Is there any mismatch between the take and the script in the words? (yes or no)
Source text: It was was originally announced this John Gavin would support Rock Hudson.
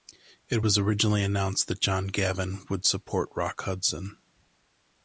yes